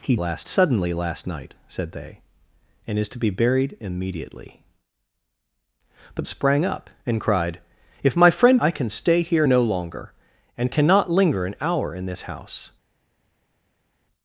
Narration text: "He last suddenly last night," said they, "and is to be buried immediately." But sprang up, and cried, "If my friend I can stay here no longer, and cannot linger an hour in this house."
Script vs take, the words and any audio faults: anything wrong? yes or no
no